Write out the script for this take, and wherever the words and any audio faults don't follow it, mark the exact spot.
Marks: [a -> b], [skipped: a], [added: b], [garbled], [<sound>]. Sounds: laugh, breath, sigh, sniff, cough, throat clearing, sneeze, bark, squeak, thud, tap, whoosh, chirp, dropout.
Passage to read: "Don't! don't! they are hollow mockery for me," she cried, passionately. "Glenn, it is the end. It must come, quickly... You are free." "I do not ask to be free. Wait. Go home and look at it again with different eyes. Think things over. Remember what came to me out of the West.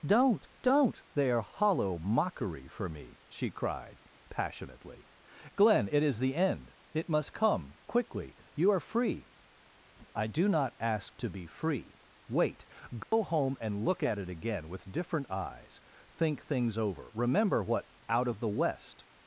"Don't! don't! they are hollow mockery for me," she cried, passionately. "Glenn, it is the end. It must come, quickly... You are free." "I do not ask to be free. Wait. Go [dropout] home and look at it again with different eyes. Think things over. Remember what [skipped: came to me] out of the West.